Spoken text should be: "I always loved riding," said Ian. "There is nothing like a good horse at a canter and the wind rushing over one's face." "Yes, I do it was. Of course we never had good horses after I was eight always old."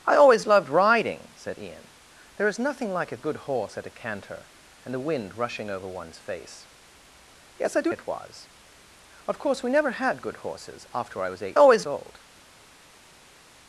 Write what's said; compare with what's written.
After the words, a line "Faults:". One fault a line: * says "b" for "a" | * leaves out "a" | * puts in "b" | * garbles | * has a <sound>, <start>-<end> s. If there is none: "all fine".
"I always loved riding," said Ian. "There is nothing like a good horse at a canter and the wind rushing over one's face." "Yes, I do it was. Of course we never had good horses after I was eight always old."
Faults:
all fine